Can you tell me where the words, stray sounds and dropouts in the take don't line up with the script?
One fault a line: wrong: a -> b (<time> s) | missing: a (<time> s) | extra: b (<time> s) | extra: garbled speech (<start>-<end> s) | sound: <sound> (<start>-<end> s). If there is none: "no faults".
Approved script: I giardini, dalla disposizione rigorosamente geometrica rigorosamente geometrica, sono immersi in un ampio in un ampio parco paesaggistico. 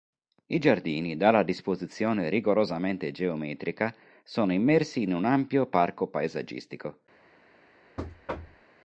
missing: rigorosamente geometrica (3.9 s)
missing: in un ampio (5.7 s)
sound: thud (8.0-8.6 s)